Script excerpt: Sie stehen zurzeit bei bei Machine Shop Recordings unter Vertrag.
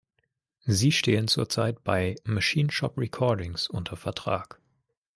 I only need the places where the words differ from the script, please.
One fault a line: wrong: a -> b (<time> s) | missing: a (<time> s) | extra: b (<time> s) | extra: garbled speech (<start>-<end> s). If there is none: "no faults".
missing: bei (2.1 s)